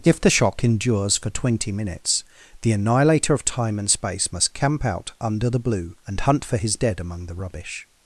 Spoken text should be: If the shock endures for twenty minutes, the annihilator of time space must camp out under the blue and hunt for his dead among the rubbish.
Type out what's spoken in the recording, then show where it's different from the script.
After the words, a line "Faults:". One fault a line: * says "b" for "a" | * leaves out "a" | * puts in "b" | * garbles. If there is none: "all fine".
If the shock endures for twenty minutes, the annihilator of time and space must camp out under the blue and hunt for his dead among the rubbish.
Faults:
* puts in "and"